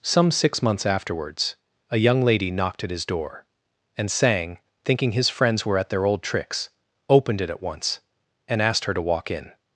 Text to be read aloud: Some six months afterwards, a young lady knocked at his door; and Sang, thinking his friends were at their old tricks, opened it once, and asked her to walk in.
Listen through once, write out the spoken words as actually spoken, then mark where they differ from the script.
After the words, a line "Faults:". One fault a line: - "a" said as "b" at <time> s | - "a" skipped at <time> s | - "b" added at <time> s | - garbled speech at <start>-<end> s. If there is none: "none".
Some six months afterwards, a young lady knocked at his door; and Sang, thinking his friends were at their old tricks, opened it at once, and asked her to walk in.
Faults:
- "at" added at 7.5 s